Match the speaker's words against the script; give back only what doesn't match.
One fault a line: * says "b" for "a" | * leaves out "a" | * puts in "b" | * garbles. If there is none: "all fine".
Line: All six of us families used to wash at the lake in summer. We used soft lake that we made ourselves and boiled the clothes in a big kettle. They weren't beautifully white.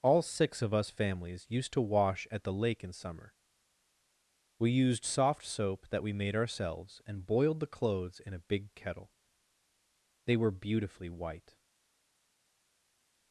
* says "soap" for "lake"
* says "were" for "weren't"